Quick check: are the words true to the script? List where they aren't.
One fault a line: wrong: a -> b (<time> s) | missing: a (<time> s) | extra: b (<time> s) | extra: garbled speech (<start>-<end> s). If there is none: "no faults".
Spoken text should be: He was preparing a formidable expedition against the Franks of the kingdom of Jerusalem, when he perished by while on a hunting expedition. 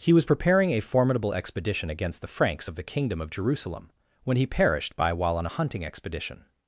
no faults